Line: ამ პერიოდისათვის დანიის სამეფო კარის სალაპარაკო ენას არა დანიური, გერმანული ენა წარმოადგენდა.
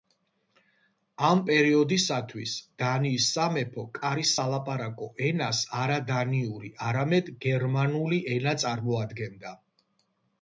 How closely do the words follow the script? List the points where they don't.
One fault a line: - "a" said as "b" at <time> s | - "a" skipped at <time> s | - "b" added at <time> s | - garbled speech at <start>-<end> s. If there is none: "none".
- "არამედ" added at 6.9 s